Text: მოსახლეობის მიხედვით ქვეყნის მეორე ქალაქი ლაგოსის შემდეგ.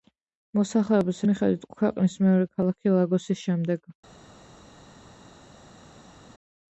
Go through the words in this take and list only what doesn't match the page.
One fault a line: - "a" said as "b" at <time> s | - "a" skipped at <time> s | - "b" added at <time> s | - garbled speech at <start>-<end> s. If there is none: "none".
none